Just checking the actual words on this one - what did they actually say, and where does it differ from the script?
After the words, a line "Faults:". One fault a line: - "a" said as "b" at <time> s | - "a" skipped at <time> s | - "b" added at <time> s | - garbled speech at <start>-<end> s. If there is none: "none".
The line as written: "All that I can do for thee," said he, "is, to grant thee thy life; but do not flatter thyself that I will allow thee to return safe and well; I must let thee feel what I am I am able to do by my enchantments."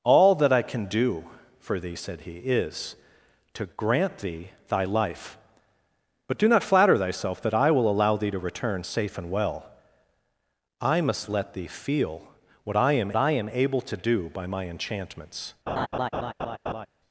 "All that I can do for thee," said he, "is, to grant thee thy life; but do not flatter thyself that I will allow thee to return safe and well; I must let thee feel what I am I am able to do by my enchantments."
Faults:
none